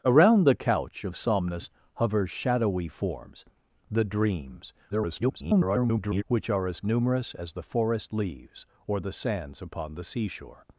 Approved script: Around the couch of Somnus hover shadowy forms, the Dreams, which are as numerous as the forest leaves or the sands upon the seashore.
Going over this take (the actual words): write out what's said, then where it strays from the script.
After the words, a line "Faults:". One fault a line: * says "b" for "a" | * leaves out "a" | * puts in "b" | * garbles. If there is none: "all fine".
Around the couch of Somnus hover shadowy forms, the Dreams, [garbled] which are as numerous as the forest leaves or the sands upon the seashore.
Faults:
* garbles